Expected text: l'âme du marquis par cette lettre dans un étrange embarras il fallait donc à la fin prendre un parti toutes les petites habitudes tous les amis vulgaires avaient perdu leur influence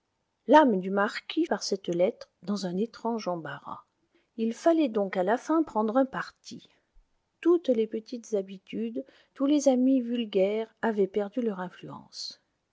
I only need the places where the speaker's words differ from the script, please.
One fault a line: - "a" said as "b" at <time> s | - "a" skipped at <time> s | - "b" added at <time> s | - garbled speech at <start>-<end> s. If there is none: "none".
none